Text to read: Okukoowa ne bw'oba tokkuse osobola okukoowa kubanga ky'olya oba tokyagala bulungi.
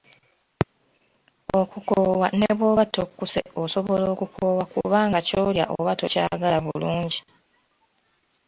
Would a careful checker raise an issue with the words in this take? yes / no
no